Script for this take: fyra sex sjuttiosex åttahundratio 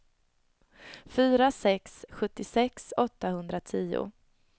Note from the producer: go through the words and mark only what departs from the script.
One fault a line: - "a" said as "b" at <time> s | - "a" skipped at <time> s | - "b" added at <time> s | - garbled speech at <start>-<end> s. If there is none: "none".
none